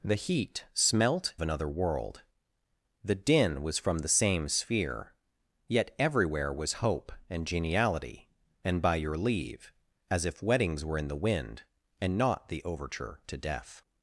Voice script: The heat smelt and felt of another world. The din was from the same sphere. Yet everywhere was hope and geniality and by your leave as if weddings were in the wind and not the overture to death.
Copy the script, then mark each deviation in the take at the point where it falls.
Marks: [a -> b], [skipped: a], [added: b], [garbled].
The heat smelt [skipped: and felt of] another world. The din was from the same sphere. Yet everywhere was hope and geniality and by your leave as if weddings were in the wind and not the overture to death.